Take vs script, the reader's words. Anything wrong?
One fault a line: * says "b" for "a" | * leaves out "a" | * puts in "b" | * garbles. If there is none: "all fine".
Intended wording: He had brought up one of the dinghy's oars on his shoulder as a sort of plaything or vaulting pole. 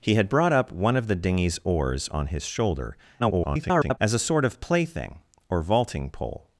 * garbles